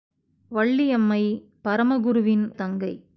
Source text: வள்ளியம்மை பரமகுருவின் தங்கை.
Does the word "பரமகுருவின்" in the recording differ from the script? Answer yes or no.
no